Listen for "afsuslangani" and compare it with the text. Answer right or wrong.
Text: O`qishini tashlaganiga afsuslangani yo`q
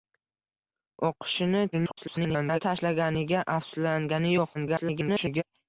right